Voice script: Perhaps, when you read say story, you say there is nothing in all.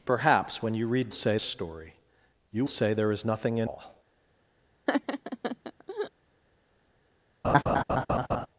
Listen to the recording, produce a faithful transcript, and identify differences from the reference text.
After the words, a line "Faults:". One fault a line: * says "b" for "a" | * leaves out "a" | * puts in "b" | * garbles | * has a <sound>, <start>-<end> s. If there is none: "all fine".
Perhaps, when you read say story, you say there is nothing in all.
Faults:
* has a laugh, 4.9-6.1 s
* has a laugh, 7.4-8.5 s